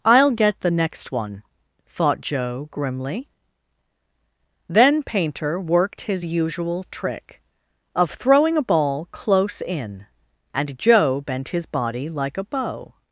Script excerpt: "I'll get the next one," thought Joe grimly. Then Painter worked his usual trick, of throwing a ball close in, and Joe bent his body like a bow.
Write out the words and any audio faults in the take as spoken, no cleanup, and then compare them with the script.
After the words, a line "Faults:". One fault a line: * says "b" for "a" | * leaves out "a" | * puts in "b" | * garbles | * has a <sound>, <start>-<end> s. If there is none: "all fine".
"I'll get the next one," thought Joe grimly. Then Painter worked his usual trick, of throwing a ball close in, and Joe bent his body like a bow.
Faults:
all fine